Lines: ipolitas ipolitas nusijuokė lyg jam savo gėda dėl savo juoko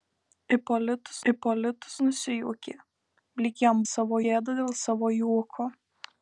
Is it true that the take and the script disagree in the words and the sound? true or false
false